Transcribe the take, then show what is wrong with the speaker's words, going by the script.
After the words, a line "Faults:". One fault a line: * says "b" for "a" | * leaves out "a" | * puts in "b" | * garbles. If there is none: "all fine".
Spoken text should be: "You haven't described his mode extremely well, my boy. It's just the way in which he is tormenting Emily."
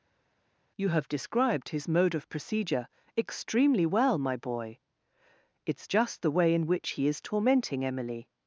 "You have described his mode of procedure extremely well, my boy. It's just the way in which he is tormenting Emily."
Faults:
* says "have" for "haven't"
* puts in "of procedure"